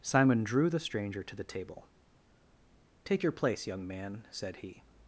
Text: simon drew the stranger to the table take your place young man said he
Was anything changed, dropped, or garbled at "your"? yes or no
no